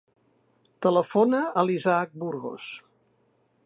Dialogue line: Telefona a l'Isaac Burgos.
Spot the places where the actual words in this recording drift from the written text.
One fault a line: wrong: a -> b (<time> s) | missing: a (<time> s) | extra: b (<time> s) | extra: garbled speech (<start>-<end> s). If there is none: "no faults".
no faults